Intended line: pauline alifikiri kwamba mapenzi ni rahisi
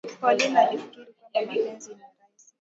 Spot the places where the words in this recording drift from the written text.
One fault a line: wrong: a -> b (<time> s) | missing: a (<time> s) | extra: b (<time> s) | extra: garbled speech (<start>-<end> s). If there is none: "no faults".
no faults